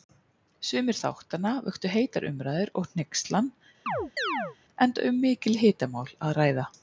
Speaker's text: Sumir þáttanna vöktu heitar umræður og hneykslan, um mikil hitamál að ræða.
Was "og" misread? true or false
false